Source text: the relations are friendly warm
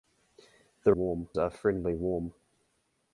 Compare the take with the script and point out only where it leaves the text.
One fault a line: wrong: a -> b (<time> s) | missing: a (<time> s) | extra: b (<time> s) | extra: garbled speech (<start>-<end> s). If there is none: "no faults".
wrong: relations -> warm (0.9 s)